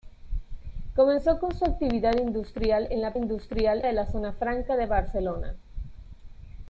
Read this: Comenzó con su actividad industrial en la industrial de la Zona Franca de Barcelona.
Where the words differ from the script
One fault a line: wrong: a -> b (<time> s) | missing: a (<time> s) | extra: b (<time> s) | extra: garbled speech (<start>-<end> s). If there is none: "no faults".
no faults